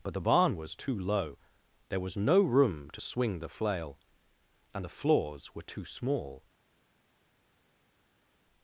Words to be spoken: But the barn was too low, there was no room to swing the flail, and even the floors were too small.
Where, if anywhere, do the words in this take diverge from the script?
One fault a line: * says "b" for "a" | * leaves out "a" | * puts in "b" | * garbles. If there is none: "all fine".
* leaves out "even"